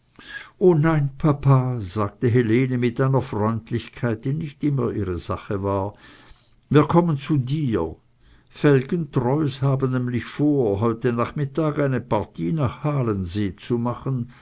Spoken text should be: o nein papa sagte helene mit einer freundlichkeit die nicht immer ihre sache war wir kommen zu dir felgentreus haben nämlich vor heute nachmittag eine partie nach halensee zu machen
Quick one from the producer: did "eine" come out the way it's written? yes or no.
yes